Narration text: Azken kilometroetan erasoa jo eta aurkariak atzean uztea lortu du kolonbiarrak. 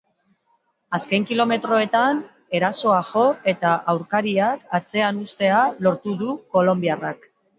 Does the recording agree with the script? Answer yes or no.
yes